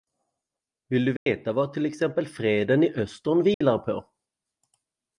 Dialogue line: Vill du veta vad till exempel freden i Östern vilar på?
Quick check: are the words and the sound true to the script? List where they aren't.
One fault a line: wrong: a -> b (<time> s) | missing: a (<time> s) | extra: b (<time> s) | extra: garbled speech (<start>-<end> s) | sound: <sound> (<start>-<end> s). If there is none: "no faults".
sound: dropout (1.2-1.3 s)
sound: dropout (3.5-3.6 s)